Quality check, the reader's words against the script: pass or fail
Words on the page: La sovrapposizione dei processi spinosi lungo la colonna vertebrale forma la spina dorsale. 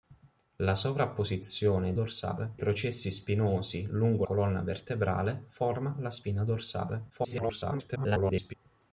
fail